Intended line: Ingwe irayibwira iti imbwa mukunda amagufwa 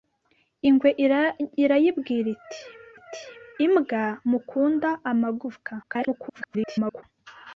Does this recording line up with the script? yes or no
no